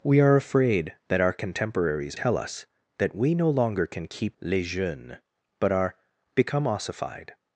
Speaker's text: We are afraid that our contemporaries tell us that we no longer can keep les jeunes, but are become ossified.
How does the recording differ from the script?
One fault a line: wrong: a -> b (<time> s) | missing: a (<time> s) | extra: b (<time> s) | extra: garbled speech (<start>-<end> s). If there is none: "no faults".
no faults